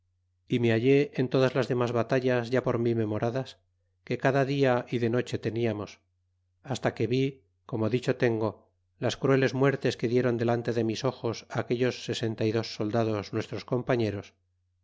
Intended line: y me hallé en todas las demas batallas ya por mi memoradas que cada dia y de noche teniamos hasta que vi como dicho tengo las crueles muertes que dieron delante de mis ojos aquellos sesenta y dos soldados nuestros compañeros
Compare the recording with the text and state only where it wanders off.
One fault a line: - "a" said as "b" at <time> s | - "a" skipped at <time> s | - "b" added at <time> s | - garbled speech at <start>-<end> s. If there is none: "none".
none